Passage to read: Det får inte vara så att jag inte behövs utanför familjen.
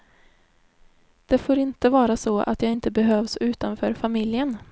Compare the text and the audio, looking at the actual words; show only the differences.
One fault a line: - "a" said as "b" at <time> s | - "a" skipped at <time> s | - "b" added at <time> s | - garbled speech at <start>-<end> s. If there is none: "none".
none